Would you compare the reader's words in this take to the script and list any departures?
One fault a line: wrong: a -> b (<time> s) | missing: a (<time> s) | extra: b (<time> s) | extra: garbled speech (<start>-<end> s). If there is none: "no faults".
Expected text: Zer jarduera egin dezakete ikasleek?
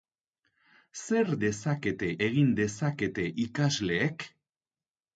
wrong: jarduera -> dezakete (1.4 s)